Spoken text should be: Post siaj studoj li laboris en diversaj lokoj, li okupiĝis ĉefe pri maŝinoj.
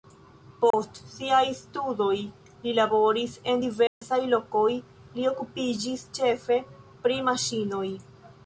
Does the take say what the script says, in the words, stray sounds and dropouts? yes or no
no